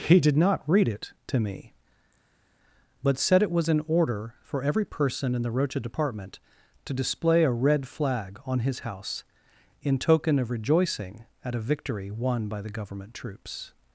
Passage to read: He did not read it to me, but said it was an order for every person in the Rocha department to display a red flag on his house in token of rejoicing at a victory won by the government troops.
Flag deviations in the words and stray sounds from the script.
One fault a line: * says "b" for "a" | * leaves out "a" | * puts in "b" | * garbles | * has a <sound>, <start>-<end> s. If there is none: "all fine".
all fine